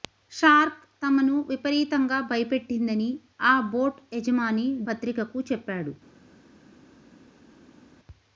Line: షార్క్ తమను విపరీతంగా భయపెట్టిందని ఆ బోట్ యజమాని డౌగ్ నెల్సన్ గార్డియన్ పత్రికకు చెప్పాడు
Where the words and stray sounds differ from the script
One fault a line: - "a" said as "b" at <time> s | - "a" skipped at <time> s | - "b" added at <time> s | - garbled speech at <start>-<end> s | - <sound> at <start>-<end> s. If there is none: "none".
- "డౌగ్ నెల్సన్ గార్డియన్" skipped at 4.7 s